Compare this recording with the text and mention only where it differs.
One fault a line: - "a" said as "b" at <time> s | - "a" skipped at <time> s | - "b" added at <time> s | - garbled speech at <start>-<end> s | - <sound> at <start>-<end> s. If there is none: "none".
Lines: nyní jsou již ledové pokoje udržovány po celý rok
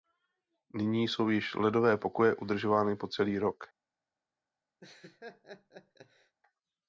- laugh at 4.8-6.4 s